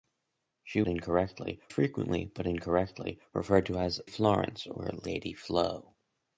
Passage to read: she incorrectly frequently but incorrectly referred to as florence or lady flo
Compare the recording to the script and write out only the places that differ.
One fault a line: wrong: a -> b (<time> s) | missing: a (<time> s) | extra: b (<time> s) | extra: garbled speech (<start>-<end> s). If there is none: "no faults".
no faults